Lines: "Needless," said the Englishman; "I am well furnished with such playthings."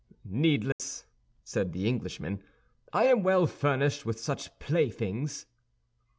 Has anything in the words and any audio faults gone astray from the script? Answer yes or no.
yes